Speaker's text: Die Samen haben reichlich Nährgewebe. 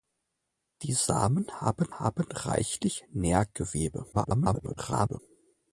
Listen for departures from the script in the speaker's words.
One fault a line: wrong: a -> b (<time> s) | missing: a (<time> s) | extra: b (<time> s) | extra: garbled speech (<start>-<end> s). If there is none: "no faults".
extra: haben (2.0 s)
extra: garbled speech (4.1-5.2 s)